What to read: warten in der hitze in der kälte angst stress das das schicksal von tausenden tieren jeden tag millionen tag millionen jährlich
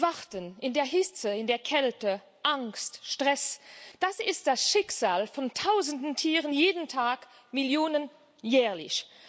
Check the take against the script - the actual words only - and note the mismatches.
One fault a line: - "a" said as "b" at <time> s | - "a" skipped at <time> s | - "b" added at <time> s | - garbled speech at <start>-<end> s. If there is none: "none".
- "ist" added at 4.2 s
- "tag millionen" skipped at 8.1 s